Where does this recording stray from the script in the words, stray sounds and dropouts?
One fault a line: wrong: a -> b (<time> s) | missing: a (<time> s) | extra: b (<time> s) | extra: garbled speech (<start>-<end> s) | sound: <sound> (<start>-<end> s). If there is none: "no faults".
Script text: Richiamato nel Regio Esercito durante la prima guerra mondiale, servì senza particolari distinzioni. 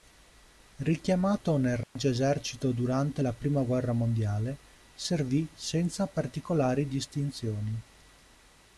sound: dropout (1.8-2.0 s)